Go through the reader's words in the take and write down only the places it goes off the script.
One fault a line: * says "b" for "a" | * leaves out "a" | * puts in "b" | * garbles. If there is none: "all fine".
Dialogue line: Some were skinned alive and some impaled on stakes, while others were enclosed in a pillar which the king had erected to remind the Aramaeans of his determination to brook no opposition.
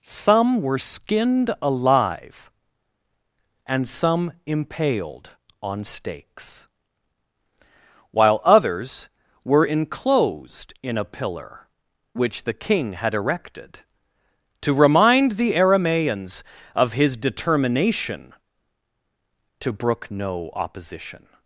all fine